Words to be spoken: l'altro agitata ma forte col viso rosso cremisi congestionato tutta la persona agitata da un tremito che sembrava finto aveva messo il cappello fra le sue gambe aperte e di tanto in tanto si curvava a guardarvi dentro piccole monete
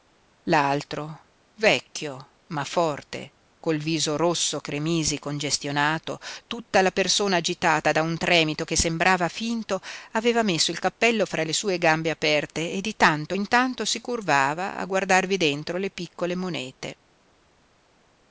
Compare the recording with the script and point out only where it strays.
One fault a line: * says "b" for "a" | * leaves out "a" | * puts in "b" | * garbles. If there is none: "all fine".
* says "vecchio" for "agitata"
* puts in "le"